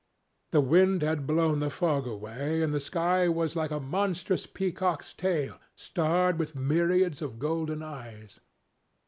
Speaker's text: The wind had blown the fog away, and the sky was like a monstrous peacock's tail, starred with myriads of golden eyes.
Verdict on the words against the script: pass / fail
pass